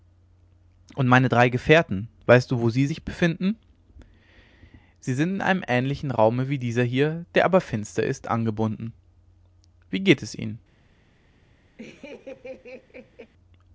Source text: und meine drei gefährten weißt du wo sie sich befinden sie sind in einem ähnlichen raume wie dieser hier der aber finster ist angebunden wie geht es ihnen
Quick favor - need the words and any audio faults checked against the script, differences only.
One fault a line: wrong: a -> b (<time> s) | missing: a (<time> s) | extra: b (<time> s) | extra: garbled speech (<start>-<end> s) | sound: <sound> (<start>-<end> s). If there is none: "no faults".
sound: laugh (11.8-13.3 s)